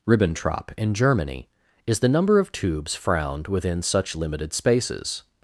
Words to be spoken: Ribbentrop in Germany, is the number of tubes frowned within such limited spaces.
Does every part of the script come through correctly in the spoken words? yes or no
yes